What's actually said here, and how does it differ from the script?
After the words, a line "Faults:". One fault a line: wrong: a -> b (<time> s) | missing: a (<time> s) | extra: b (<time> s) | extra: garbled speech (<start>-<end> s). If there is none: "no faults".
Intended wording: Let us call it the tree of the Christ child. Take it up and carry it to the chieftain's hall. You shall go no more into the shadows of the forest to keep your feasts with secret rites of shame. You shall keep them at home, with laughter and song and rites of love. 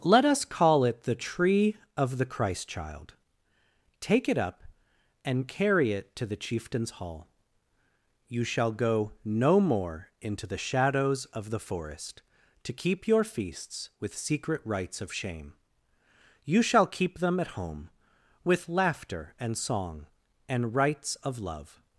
Let us call it the tree of the Christ child. Take it up and carry it to the chieftain's hall. You shall go no more into the shadows of the forest to keep your feasts with secret rites of shame. You shall keep them at home, with laughter and song and rites of love.
Faults:
no faults